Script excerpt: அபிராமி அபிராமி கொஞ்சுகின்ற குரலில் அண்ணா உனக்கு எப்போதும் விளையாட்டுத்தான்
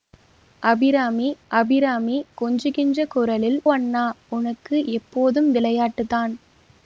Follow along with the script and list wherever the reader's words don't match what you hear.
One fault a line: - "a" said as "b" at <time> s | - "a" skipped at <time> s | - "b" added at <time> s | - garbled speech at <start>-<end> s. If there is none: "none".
none